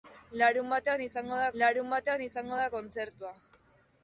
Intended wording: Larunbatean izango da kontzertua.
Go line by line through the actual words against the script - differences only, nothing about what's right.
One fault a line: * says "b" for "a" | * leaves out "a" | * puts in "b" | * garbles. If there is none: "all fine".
* puts in "larunbatean izango da"